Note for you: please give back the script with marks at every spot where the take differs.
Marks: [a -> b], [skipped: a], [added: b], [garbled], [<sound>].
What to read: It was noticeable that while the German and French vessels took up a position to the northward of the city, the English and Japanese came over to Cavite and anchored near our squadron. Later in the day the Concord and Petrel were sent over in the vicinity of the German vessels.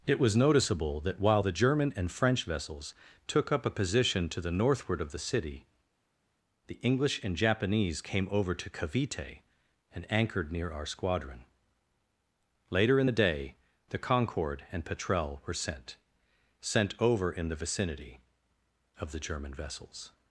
It was noticeable that while the German and French vessels took up a position to the northward of the city, the English and Japanese came over to Cavite and anchored near our squadron. Later in the day the Concord and Petrel were sent [added: sent] over in the vicinity of the German vessels.